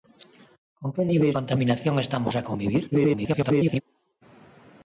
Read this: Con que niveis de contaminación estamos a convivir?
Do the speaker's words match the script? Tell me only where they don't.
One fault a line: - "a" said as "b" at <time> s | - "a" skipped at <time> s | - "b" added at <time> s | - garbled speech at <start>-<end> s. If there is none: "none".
- "de" skipped at 1.3 s
- garbled speech at 2.9-3.8 s